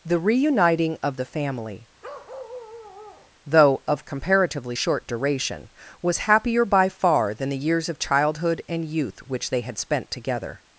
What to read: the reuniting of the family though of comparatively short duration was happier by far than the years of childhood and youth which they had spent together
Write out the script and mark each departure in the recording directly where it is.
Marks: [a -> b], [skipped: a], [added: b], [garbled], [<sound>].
the reuniting of the family [bark] though of comparatively short duration was happier by far than the years of childhood and youth which they had spent together